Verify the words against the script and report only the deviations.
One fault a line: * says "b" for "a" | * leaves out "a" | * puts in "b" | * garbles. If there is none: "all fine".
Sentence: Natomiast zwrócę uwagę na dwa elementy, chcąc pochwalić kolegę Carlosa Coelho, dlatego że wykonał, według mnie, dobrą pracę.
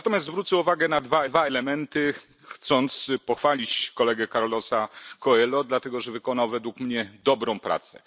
* puts in "dwa"